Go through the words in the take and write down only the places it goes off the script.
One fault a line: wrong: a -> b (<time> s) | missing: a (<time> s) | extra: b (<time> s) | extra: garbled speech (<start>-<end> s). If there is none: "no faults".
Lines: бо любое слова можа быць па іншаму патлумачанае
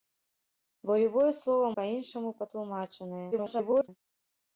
missing: можа быць (1.7 s)
extra: garbled speech (3.3-3.9 s)